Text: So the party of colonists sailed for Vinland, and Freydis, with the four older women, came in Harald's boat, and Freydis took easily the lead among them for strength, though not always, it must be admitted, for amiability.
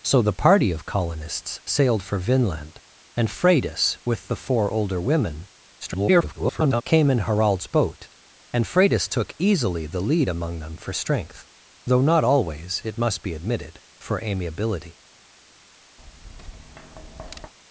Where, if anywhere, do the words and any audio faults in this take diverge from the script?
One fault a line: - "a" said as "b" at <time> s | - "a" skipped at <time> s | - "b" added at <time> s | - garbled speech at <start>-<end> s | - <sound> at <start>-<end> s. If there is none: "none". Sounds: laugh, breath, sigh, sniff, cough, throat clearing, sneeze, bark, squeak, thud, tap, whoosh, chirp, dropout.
- garbled speech at 5.8-6.8 s
- tap at 16.0-17.5 s